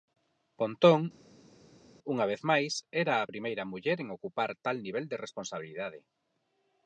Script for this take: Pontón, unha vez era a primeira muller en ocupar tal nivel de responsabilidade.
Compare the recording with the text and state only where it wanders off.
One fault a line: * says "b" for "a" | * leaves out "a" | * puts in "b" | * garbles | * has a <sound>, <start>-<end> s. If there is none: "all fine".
* puts in "máis"